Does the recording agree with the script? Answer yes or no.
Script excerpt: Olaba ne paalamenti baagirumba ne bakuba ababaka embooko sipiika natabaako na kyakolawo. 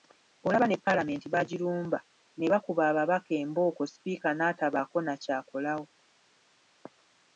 yes